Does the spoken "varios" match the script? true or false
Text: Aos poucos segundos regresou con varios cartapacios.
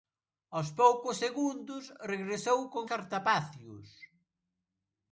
false